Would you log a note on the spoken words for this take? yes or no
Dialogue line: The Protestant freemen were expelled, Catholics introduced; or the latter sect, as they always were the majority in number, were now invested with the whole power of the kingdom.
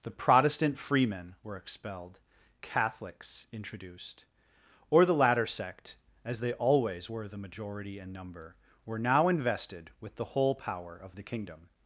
no